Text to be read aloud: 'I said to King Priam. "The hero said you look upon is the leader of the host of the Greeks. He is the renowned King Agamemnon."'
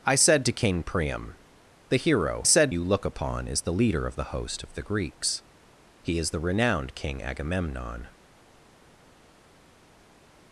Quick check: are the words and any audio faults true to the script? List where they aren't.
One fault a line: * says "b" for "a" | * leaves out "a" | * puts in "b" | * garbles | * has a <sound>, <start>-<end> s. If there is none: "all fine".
all fine